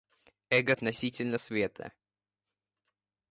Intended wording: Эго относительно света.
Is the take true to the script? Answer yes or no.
yes